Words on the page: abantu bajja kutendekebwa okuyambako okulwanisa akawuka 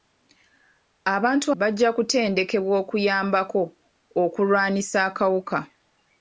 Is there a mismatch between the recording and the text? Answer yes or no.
no